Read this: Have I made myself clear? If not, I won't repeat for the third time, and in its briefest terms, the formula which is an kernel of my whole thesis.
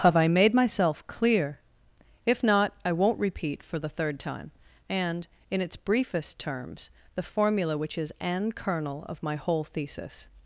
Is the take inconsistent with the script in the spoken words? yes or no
no